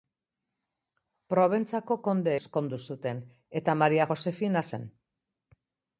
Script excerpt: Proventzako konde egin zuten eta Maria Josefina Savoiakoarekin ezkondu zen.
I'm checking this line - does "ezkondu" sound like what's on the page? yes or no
no